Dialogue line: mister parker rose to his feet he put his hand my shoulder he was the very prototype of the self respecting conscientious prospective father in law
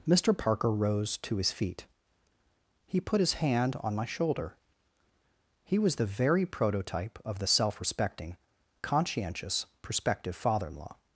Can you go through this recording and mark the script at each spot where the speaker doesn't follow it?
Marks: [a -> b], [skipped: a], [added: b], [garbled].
mister parker rose to his feet he put his hand [added: on] my shoulder he was the very prototype of the self respecting conscientious prospective father in law